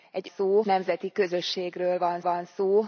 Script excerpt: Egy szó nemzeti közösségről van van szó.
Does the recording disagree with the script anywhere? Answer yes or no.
no